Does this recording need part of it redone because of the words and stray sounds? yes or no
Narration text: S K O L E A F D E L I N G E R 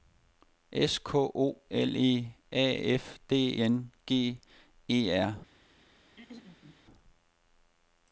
yes